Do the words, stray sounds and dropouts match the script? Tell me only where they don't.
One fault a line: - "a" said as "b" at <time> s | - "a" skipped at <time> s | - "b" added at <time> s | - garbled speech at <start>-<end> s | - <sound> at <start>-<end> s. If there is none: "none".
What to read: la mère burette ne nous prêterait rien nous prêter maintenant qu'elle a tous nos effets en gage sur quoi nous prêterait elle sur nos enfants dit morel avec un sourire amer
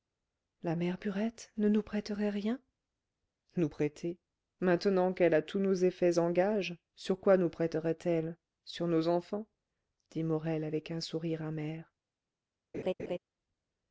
- laugh at 12.7-13.2 s